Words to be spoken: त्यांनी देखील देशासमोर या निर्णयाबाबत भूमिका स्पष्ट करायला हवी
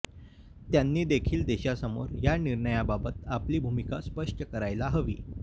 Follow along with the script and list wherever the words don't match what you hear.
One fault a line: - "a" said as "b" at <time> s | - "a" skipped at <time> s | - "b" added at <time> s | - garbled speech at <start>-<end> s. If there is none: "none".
- "आपली" added at 3.3 s